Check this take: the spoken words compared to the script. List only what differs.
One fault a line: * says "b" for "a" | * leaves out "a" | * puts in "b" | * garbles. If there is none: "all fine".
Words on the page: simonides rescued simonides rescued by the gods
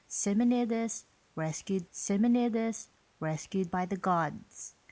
all fine